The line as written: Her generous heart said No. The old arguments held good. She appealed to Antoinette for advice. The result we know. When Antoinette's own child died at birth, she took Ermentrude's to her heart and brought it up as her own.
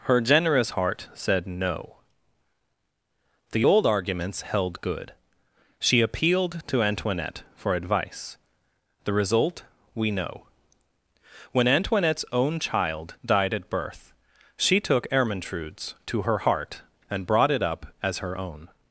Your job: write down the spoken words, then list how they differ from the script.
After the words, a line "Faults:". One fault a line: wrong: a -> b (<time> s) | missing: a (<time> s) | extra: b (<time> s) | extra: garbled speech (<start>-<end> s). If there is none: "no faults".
Her generous heart said No. The old arguments held good. She appealed to Antoinette for advice. The result we know. When Antoinette's own child died at birth, she took Ermentrude's to her heart and brought it up as her own.
Faults:
no faults